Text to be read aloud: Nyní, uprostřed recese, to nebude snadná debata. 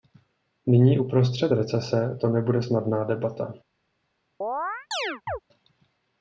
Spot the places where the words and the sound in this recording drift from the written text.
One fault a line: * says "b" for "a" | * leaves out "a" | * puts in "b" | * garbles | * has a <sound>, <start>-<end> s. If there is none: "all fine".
* has a chirp, 4.4-5.4 s